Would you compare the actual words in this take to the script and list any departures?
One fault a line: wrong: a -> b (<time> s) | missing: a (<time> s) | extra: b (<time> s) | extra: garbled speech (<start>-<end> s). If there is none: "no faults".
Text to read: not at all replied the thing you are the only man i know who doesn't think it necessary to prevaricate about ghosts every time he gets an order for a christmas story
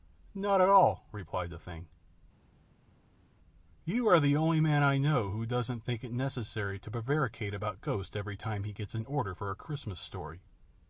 no faults